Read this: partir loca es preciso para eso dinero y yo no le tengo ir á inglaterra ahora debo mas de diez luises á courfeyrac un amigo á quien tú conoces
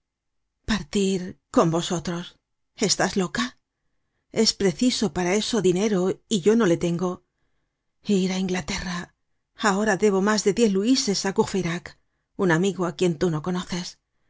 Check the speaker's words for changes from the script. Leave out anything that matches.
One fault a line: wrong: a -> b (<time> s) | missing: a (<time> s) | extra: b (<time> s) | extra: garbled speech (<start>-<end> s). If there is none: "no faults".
extra: con vosotros estás (1.5 s)
extra: no (13.3 s)